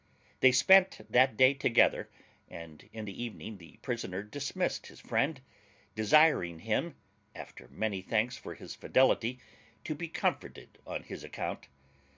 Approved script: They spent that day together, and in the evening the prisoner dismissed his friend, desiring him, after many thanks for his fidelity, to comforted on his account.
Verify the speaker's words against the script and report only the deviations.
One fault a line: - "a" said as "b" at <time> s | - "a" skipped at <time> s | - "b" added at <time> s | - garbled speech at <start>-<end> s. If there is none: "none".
- "be" added at 10.0 s